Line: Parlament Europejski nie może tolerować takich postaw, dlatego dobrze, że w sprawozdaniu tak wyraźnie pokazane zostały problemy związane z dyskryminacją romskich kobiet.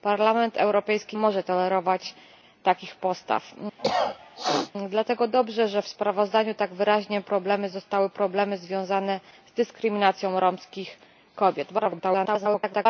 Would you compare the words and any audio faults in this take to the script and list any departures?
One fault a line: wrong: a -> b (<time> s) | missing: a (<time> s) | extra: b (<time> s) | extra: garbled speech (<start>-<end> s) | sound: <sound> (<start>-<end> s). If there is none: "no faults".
missing: nie (1.2 s)
sound: cough (3.8-4.7 s)
wrong: pokazane -> problemy (7.2 s)
extra: garbled speech (11.8-12.9 s)